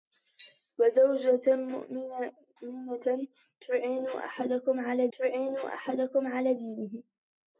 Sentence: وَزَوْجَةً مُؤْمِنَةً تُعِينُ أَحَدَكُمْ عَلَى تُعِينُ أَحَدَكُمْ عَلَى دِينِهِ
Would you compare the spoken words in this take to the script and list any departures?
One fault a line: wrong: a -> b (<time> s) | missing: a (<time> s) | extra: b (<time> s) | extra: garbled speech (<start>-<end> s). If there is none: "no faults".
no faults